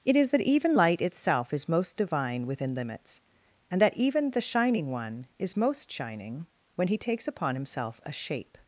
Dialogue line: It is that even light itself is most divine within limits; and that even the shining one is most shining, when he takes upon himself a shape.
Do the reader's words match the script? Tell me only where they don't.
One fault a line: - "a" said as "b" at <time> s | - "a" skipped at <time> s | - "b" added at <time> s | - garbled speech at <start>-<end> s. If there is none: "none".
none